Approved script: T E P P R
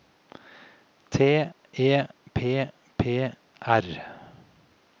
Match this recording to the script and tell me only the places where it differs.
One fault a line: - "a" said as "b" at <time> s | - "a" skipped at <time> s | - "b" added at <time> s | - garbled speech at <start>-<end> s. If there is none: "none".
none